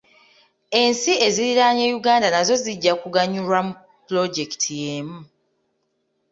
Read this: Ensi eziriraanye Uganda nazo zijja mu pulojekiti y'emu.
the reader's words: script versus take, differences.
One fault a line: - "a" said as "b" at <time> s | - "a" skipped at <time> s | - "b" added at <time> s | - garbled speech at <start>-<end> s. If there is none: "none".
- "kuganyulwa" added at 3.0 s